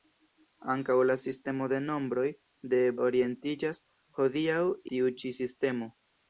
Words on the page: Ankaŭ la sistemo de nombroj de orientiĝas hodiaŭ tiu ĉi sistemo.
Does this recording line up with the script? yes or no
yes